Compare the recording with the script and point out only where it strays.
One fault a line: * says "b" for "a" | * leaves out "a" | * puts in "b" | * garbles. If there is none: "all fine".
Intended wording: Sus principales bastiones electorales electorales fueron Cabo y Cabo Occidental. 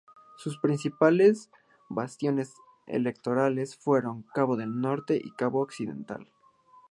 * leaves out "electorales"
* puts in "del Norte"